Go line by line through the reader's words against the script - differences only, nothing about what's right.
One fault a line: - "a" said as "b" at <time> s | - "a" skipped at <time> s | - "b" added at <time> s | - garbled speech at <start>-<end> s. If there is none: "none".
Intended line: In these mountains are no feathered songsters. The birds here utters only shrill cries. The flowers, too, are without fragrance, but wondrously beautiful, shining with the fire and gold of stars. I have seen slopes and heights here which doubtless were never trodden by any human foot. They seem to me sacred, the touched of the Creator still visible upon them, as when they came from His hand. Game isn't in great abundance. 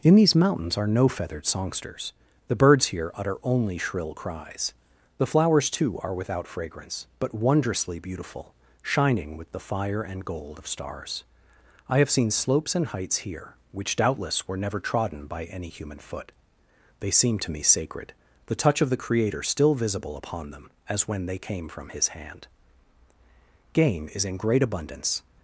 - "utters" said as "utter" at 3.1 s
- "touched" said as "touch" at 18.6 s
- "isn't" said as "is" at 24.1 s